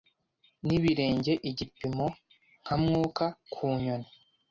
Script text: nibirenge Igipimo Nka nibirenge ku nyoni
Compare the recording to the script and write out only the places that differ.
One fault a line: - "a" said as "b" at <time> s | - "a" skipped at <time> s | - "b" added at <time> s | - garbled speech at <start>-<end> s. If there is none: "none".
- "nibirenge" said as "mwuka" at 2.8 s